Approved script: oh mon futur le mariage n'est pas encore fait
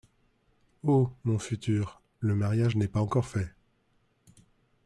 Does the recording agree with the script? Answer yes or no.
yes